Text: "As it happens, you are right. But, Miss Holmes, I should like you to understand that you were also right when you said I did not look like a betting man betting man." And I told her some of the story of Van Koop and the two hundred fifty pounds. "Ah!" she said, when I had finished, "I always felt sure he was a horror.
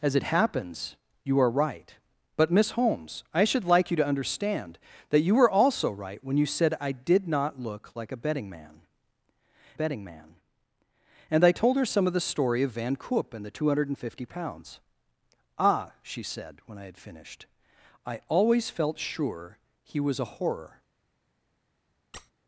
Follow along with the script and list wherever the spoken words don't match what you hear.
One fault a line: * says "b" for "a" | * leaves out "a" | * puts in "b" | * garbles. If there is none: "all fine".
all fine